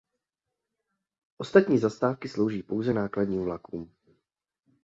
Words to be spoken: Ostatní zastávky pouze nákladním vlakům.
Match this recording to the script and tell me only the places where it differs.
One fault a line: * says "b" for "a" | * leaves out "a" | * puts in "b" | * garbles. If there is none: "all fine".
* puts in "slouží"